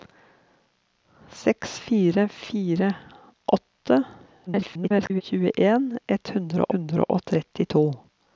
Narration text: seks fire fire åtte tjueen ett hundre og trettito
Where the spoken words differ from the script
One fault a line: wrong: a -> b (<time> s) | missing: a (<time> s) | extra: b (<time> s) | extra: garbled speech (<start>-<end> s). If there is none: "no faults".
extra: garbled speech (4.5-5.2 s)
extra: hundre (6.7 s)